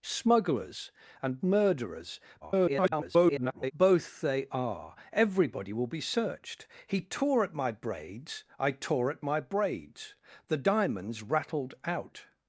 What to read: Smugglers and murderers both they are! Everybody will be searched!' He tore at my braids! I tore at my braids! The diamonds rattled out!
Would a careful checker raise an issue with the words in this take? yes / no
yes